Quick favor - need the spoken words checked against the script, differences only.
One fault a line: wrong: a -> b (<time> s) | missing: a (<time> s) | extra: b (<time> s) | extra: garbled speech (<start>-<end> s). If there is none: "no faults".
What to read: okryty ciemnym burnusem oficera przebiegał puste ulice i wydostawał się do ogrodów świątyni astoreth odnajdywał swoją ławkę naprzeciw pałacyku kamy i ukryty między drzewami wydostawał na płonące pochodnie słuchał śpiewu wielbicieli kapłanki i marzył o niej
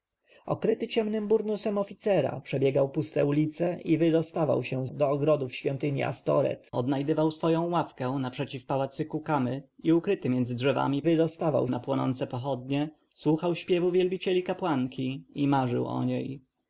no faults